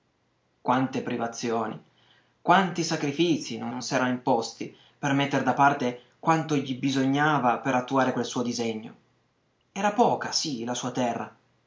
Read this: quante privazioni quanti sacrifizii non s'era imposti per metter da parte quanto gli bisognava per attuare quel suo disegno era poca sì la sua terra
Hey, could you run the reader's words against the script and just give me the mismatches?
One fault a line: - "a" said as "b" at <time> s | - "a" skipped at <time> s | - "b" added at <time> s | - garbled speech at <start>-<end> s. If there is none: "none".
- "non" added at 3.7 s